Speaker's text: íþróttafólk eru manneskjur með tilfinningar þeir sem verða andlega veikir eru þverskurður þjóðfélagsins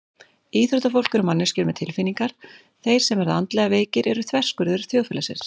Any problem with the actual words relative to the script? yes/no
no